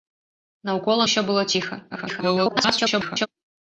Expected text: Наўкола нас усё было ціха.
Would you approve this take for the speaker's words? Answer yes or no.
no